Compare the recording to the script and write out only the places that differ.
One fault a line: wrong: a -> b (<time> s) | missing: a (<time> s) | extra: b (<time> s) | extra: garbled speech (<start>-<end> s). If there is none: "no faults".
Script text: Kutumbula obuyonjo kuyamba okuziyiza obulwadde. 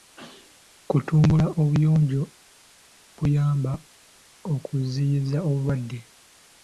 no faults